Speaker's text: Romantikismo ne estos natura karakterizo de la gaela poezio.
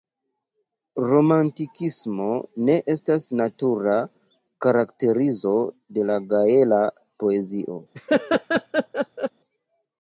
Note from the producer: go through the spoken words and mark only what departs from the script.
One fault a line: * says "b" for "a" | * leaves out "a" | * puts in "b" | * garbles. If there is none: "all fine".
* says "estas" for "estos"